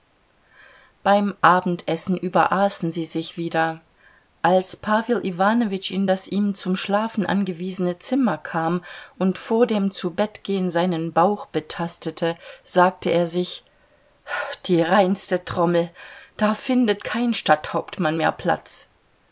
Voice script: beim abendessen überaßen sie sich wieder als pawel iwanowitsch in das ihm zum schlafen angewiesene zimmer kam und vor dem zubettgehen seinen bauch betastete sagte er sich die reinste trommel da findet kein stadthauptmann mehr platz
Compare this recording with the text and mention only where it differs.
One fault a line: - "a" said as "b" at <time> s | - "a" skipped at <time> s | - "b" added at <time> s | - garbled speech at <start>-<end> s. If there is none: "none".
none